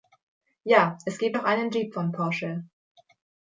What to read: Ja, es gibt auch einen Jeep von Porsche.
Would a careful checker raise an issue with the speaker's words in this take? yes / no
no